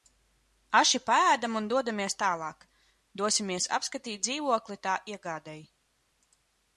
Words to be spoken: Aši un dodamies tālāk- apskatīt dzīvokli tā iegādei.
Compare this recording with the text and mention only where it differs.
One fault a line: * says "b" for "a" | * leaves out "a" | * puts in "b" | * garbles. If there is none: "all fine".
* puts in "paēdam"
* puts in "dosimies"